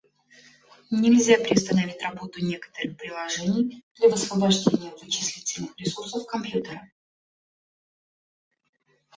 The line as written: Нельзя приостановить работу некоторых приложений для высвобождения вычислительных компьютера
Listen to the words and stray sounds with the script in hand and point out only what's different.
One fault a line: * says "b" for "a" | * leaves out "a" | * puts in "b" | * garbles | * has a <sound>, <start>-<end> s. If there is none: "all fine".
* puts in "ресурсов"